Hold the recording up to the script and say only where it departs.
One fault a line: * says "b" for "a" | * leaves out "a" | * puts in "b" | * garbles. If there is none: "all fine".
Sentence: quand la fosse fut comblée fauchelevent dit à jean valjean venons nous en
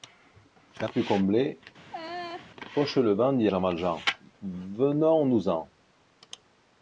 * leaves out "la fosse"
* leaves out "à"